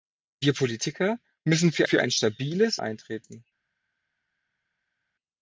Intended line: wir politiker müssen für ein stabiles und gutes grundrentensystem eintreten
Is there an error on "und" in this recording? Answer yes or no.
yes